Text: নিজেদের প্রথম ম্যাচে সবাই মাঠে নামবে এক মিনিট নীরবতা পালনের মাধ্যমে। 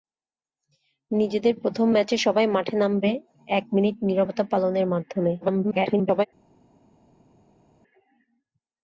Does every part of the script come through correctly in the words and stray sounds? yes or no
no